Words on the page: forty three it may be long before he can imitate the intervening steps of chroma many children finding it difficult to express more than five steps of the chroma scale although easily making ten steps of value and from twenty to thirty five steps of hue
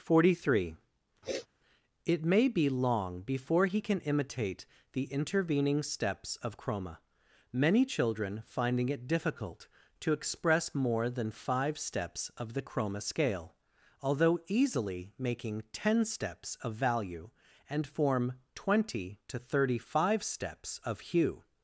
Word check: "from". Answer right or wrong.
wrong